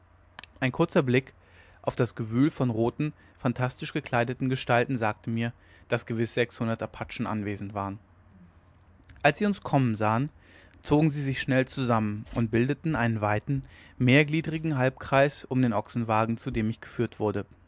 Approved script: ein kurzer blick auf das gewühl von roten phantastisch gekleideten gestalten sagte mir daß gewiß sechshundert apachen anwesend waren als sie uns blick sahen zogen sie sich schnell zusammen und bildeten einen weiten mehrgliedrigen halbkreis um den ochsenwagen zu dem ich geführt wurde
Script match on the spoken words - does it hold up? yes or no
no